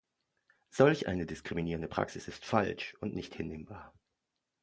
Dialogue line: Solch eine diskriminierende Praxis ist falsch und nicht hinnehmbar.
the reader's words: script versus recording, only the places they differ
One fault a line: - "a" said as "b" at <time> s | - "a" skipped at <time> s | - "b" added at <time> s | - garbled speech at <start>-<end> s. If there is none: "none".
none